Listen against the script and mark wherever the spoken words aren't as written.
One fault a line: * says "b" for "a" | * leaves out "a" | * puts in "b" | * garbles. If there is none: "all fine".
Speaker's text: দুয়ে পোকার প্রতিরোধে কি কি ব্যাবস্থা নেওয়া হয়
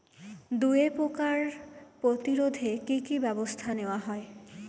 all fine